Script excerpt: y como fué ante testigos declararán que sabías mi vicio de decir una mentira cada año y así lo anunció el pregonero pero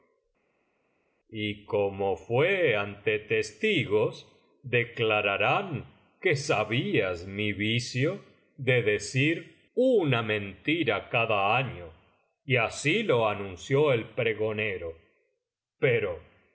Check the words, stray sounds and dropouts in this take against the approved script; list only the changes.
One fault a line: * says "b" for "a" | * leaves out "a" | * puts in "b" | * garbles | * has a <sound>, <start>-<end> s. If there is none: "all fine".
all fine